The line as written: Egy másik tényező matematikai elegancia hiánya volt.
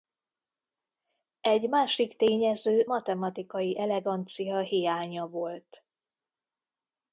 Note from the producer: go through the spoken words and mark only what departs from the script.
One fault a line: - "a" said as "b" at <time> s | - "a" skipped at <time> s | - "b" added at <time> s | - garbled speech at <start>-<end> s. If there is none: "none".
none